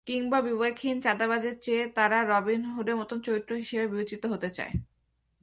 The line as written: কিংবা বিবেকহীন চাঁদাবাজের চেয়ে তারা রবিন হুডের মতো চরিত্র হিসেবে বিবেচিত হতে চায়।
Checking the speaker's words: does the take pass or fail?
pass